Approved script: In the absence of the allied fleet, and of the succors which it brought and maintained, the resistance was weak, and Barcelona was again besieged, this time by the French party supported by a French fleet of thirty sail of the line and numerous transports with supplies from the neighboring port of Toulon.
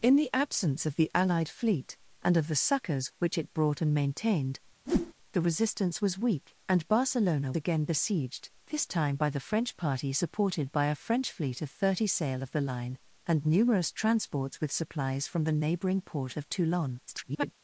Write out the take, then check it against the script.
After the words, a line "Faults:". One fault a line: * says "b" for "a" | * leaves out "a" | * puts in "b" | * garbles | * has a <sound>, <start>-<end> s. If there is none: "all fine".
In the absence of the allied fleet, and of the succors which it brought and maintained, the resistance was weak, and Barcelona again besieged, this time by the French party supported by a French fleet of thirty sail of the line and numerous transports with supplies from the neighboring port of Toulon. [garbled]
Faults:
* has a whoosh, 4.9-5.1 s
* leaves out "was"
* garbles